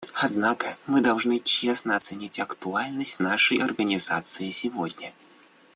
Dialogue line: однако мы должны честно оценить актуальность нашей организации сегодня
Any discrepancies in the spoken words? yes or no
no